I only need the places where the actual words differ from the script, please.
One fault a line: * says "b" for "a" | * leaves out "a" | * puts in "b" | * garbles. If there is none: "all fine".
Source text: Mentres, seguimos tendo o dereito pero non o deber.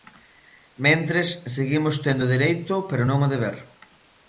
all fine